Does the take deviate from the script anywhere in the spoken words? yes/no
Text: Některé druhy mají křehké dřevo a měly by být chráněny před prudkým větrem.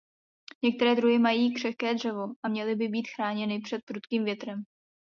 no